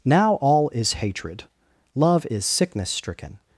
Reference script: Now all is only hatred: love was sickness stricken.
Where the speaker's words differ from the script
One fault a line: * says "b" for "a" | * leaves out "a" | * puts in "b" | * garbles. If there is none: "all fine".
* leaves out "only"
* says "is" for "was"